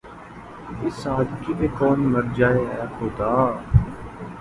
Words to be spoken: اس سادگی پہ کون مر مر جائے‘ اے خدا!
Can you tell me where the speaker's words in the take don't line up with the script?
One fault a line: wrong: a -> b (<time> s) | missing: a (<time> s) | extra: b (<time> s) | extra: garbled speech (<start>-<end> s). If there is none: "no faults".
missing: مر (2.2 s)